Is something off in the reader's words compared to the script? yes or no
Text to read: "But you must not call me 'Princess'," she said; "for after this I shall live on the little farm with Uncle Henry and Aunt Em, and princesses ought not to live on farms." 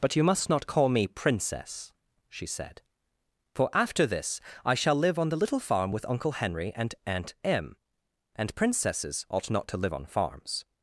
no